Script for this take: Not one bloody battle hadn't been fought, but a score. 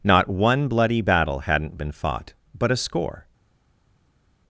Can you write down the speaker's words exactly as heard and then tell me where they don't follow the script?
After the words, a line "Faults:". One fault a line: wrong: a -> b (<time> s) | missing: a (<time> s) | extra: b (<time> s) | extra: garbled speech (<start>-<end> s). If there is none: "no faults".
Not one bloody battle hadn't been fought, but a score.
Faults:
no faults